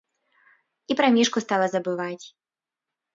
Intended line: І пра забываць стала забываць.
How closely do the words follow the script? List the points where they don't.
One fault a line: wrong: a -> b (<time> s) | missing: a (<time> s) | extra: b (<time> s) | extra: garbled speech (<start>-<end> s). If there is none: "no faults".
wrong: забываць -> мішку (1.2 s)